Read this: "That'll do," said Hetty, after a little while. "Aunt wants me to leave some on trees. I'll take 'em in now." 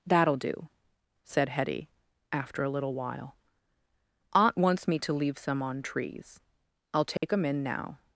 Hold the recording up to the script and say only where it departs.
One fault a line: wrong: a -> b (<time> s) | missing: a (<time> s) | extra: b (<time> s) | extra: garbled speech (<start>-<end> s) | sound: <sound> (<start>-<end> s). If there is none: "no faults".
sound: dropout (7.2-7.2 s)